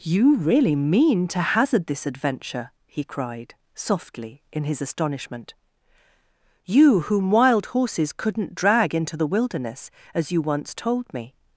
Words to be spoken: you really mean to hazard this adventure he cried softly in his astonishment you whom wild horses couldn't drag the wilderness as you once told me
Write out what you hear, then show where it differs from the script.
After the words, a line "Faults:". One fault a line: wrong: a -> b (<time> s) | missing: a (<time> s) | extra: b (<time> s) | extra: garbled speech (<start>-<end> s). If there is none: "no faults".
you really mean to hazard this adventure he cried softly in his astonishment you whom wild horses couldn't drag into the wilderness as you once told me
Faults:
extra: into (8.9 s)